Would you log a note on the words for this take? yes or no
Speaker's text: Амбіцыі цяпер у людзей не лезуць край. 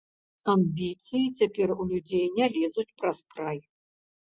yes